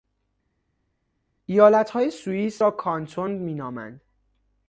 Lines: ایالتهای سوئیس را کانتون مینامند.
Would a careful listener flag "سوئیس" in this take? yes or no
no